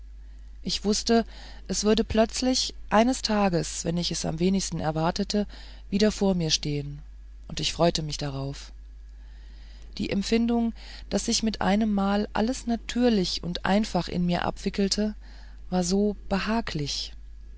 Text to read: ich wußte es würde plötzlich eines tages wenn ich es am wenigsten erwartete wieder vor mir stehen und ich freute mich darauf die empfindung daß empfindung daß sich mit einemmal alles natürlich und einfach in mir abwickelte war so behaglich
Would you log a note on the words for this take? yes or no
yes